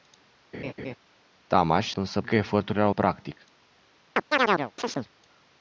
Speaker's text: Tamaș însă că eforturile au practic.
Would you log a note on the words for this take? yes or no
no